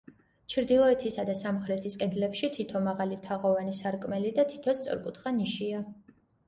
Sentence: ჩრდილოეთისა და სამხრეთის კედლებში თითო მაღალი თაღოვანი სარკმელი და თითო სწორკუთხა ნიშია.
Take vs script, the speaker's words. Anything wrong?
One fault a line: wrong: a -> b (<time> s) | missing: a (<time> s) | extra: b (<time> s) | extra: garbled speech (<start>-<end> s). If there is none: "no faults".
no faults